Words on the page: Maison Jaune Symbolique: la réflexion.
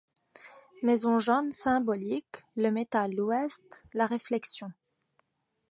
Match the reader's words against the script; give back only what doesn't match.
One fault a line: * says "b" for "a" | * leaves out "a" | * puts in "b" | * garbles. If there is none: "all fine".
* puts in "le métal l'ouest"